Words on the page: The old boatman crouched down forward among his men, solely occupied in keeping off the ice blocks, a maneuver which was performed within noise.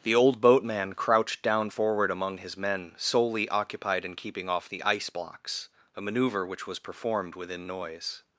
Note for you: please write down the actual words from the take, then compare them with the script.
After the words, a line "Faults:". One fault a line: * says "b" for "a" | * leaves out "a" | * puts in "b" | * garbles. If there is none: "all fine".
The old boatman crouched down forward among his men, solely occupied in keeping off the ice blocks, a maneuver which was performed within noise.
Faults:
all fine